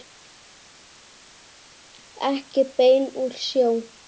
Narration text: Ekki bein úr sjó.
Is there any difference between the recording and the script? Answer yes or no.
no